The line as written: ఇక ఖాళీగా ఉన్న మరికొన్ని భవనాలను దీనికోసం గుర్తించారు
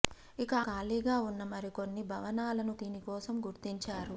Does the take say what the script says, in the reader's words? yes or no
yes